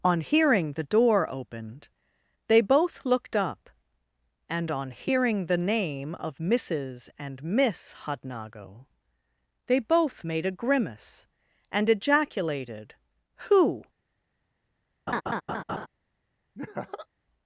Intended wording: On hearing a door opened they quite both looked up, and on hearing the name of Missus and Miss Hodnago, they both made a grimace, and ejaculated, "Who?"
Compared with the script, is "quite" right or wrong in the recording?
wrong